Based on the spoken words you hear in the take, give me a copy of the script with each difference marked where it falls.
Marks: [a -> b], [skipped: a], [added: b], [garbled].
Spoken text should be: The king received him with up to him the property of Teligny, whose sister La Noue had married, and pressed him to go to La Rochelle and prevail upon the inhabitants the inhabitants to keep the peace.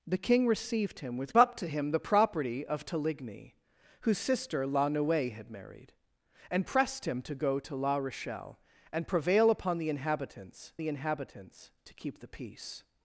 The king received him with up to him the property of Teligny, whose sister La Noue had married, and pressed him to go to La Rochelle and prevail upon the inhabitants the inhabitants to keep the peace.